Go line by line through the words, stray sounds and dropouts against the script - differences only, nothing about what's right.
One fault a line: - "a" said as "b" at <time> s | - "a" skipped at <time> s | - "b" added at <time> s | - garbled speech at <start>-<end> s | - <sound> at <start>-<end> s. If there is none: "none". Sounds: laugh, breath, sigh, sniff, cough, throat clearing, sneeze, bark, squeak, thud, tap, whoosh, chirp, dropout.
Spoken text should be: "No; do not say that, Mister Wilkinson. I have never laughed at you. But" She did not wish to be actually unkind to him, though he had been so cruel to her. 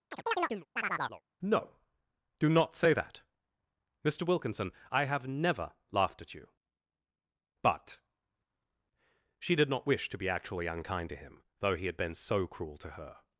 - chirp at 0.1-1.2 s